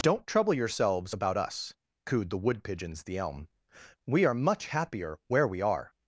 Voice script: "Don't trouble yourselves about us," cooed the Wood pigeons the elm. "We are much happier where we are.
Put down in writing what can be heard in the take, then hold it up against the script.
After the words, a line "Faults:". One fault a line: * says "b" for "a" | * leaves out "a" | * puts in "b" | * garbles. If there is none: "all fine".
"Don't trouble yourselves about us," cooed the Wood pigeons the elm. "We are much happier where we are.
Faults:
all fine